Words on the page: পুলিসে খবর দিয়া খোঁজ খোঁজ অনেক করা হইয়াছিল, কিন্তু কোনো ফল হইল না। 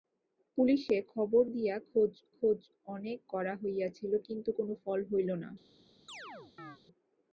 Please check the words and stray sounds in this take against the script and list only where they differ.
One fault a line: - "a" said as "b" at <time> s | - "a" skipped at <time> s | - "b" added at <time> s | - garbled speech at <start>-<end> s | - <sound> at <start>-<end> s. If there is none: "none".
- chirp at 6.1-6.8 s